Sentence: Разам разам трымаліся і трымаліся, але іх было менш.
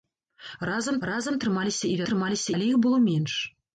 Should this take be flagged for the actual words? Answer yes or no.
no